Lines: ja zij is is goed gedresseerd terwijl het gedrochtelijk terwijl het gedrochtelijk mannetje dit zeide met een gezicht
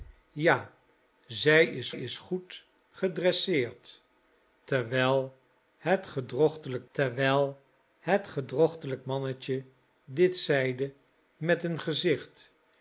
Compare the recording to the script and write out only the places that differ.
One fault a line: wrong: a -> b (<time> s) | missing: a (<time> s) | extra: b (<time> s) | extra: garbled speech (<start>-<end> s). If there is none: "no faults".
no faults